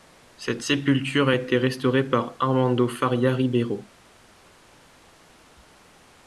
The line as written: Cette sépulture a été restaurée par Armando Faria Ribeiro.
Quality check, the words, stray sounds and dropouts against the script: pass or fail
pass